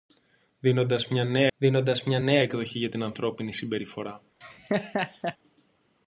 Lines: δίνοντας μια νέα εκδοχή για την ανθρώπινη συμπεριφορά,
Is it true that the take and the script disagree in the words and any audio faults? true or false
true